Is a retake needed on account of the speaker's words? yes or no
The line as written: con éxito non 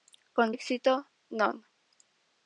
no